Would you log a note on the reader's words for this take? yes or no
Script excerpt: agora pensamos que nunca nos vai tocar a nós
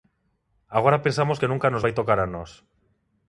no